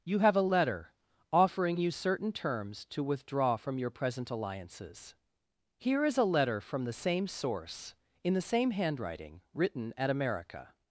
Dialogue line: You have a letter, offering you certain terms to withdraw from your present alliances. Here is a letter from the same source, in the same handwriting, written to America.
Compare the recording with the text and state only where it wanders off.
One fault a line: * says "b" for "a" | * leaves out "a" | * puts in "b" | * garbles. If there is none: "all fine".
* says "at" for "to"